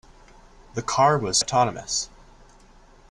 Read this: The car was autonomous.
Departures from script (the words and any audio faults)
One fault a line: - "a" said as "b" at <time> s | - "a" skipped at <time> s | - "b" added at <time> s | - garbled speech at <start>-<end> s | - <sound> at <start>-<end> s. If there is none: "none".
none